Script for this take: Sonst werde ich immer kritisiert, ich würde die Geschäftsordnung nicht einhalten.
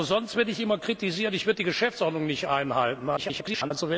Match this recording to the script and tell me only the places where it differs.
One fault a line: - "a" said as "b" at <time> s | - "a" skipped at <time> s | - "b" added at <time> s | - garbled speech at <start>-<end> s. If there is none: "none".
- garbled speech at 3.2-3.7 s